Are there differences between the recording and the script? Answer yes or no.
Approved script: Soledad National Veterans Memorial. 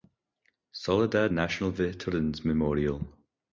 no